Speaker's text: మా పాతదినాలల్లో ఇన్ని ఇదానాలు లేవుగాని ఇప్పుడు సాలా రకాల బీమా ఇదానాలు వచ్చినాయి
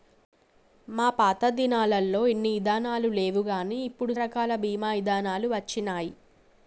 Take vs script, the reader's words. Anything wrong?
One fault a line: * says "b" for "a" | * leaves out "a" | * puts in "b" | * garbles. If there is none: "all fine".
* leaves out "సాలా"